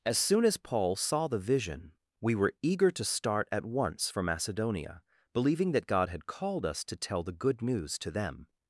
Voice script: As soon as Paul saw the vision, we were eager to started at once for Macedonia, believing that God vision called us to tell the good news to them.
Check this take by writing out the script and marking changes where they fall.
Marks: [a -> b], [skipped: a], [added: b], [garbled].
As soon as Paul saw the vision, we were eager to [started -> start] at once for Macedonia, believing that God [vision -> had] called us to tell the good news to them.